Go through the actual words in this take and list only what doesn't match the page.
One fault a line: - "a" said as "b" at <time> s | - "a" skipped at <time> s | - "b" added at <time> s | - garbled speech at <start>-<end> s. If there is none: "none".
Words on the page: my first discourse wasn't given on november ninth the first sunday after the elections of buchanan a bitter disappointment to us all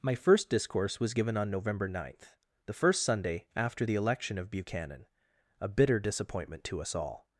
- "wasn't" said as "was" at 1.0 s
- "elections" said as "election" at 4.0 s